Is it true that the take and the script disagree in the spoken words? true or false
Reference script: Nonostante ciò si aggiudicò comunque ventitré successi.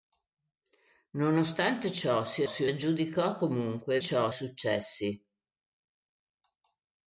true